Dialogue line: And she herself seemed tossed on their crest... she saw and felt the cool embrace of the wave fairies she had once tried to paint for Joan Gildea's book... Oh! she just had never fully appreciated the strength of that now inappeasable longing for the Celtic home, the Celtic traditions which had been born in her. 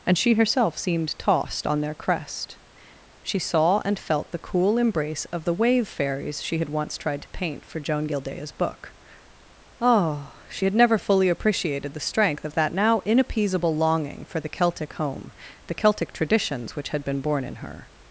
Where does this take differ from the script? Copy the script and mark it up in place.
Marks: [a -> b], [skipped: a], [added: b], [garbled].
And she herself seemed tossed on their crest... she saw and felt the cool embrace of the wave fairies she had once tried to paint for Joan Gildea's book... Oh! she [skipped: just] had never fully appreciated the strength of that now inappeasable longing for the Celtic home, the Celtic traditions which had been born in her.